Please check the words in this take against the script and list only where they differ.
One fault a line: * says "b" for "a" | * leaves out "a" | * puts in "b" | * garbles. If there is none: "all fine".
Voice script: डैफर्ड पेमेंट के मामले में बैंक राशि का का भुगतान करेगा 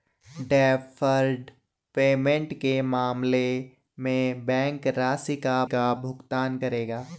all fine